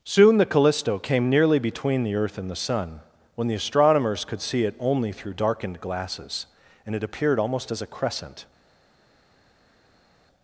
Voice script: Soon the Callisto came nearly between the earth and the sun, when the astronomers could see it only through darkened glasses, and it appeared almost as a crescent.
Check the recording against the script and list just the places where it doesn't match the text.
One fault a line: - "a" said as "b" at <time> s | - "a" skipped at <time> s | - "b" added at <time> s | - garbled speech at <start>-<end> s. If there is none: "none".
none